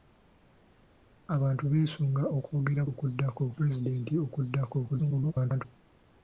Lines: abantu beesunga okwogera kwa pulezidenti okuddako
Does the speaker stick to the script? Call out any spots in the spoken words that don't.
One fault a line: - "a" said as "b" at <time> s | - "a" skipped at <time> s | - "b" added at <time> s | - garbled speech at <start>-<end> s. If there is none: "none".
- "kwa" said as "okuddako" at 2.9 s
- garbled speech at 4.9-5.7 s